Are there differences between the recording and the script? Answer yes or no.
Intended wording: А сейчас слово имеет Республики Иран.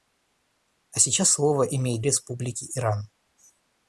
no